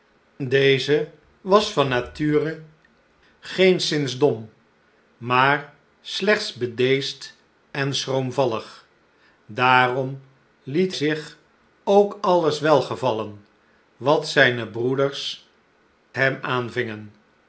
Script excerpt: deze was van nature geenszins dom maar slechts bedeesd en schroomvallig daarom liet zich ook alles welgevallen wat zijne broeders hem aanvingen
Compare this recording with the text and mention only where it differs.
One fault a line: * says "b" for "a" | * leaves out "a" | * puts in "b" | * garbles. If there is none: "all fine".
all fine